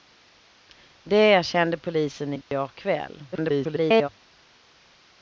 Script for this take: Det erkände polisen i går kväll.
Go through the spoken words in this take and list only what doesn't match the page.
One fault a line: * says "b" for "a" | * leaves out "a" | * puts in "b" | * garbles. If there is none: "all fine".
* garbles